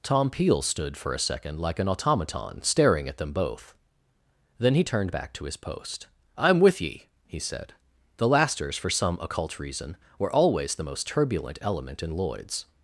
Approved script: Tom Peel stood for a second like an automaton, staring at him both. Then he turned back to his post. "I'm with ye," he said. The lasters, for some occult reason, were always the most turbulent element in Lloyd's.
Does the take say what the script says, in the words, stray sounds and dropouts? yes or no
no